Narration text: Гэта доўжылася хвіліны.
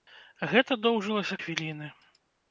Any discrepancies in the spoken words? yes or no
no